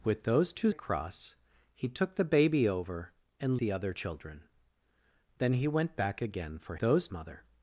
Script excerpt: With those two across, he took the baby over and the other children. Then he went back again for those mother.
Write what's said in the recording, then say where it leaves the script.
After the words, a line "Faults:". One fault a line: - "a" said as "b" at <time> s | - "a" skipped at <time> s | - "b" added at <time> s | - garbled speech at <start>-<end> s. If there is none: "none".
With those two across, he took the baby over and the other children. Then he went back again for those mother.
Faults:
none